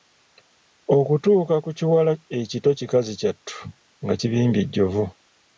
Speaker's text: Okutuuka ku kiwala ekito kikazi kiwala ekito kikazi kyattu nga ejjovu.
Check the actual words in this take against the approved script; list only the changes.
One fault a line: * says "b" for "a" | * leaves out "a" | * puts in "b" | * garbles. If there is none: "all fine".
* leaves out "kiwala ekito kikazi"
* puts in "kibimbye"